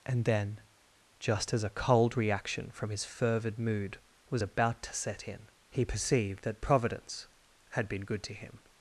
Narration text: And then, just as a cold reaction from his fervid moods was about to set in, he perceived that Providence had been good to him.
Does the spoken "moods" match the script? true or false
false